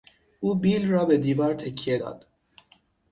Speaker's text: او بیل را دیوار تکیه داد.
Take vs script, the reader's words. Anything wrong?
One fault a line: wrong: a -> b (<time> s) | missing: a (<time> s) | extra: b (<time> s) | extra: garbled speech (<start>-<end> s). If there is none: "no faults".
extra: به (1.1 s)